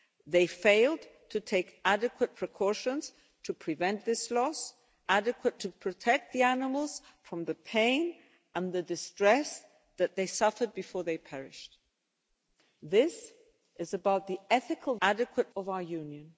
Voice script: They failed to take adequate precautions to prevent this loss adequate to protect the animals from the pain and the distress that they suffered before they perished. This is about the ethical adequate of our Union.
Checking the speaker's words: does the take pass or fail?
pass